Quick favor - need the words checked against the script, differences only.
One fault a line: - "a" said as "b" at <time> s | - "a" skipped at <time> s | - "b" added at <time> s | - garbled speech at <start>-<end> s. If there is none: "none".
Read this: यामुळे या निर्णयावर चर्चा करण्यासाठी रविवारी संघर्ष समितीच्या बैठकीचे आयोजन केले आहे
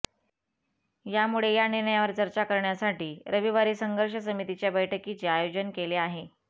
none